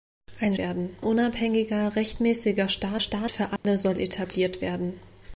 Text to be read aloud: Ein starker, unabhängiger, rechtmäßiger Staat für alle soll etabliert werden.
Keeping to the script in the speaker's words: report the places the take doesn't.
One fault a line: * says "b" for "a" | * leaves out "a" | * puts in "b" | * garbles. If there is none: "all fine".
* says "werden" for "starker"
* puts in "Staat"